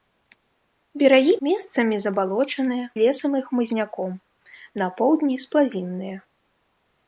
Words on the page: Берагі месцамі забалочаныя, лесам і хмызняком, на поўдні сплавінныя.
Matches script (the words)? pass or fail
pass